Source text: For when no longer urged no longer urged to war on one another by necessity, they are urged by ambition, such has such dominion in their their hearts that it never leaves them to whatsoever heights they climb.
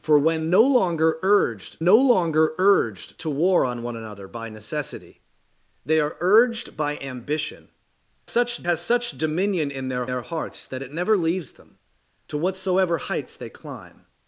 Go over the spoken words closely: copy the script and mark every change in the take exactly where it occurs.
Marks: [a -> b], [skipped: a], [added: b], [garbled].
For when no longer urged no longer urged to war on one another by necessity, they are urged by ambition, such has such dominion in their their hearts that it never leaves them to whatsoever heights they climb.